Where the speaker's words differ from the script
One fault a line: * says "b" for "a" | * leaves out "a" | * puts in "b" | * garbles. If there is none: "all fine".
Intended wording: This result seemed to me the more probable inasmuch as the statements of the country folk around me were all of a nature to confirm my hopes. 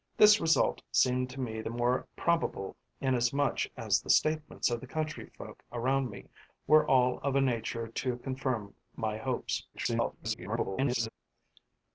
* garbles